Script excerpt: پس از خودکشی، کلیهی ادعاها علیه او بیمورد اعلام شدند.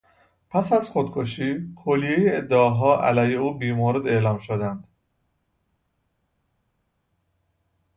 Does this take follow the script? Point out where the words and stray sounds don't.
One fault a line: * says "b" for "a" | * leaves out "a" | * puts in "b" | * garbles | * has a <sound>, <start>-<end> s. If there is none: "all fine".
all fine